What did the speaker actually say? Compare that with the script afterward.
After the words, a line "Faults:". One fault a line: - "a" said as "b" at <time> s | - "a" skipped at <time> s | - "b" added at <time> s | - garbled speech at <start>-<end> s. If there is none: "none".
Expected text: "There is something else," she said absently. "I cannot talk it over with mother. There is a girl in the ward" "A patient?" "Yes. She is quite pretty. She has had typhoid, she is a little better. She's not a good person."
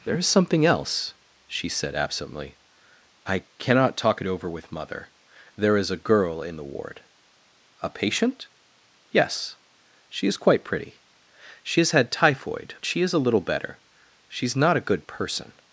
"There is something else," she said absently. "I cannot talk it over with mother. There is a girl in the ward" "A patient?" "Yes. She is quite pretty. She has had typhoid, she is a little better. She's not a good person."
Faults:
none